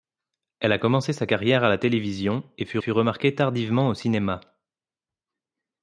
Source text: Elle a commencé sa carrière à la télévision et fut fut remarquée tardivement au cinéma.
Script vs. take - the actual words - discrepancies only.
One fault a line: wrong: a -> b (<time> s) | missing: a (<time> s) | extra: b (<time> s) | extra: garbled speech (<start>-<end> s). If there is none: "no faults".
no faults